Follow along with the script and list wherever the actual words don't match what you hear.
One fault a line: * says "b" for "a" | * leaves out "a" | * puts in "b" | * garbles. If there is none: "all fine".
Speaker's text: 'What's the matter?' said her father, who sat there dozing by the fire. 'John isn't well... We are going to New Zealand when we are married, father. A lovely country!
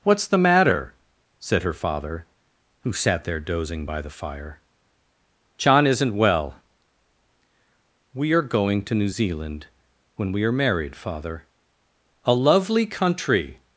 all fine